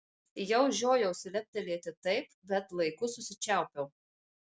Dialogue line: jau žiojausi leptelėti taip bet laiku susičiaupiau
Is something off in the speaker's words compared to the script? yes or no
no